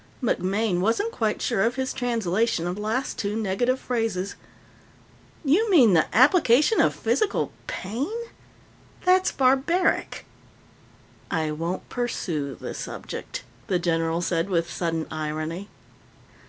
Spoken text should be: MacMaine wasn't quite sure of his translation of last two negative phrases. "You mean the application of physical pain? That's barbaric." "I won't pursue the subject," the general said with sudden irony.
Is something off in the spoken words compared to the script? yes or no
no